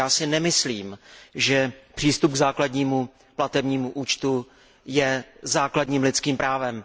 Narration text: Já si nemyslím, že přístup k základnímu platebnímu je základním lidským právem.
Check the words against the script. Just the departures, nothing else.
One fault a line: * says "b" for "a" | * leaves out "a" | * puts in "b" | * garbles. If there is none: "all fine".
* puts in "účtu"